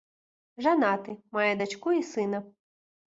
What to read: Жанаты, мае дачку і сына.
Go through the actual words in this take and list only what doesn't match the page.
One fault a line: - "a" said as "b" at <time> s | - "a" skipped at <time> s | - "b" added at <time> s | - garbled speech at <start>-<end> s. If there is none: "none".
none